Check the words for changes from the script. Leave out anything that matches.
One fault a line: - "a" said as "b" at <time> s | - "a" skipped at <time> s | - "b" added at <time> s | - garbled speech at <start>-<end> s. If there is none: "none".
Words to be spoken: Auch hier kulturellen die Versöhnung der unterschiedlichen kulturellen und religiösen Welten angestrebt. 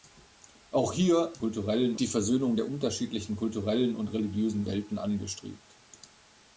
none